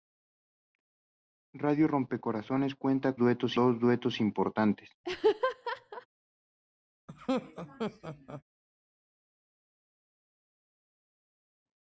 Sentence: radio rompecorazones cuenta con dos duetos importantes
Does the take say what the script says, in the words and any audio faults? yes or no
no